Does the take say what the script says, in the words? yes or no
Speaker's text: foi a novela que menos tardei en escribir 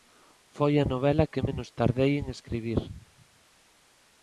yes